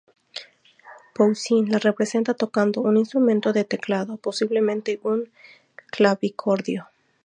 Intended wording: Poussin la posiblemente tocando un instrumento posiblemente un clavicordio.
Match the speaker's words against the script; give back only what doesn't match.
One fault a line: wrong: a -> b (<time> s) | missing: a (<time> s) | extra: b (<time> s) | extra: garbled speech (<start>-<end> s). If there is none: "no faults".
wrong: posiblemente -> representa (1.8 s)
extra: de teclado (3.5 s)